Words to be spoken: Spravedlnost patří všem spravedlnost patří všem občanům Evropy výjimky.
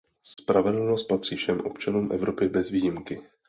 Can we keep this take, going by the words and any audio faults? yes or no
no